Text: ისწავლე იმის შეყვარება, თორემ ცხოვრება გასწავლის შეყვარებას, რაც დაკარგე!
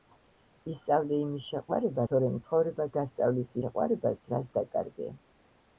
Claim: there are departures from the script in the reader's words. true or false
false